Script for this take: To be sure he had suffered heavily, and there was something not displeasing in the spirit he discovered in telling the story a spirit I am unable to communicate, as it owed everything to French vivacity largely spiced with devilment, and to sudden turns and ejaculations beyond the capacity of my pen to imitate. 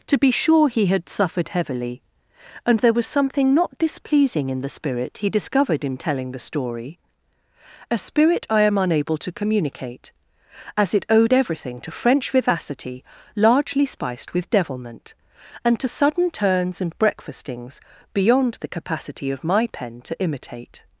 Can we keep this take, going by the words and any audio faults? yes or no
no